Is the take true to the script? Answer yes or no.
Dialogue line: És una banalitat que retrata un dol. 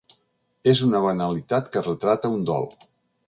yes